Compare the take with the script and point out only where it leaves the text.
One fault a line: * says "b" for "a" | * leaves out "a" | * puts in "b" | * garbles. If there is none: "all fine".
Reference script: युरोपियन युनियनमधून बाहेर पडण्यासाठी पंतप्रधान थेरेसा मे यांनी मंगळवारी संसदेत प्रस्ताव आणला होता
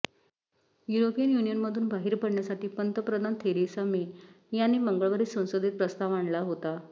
all fine